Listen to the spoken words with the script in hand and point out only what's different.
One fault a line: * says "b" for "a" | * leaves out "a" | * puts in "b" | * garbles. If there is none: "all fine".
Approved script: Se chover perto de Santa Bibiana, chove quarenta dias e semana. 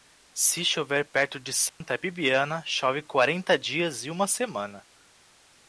* puts in "uma"